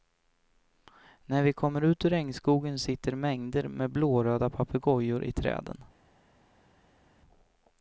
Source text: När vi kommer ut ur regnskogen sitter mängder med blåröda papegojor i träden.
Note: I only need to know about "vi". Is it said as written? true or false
true